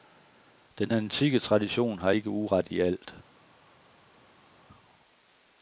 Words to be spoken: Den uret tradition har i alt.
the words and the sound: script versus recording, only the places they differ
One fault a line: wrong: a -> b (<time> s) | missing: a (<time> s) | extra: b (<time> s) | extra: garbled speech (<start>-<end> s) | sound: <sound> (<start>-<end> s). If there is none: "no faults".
wrong: uret -> antikke (0.9 s)
extra: ikke uret (2.1 s)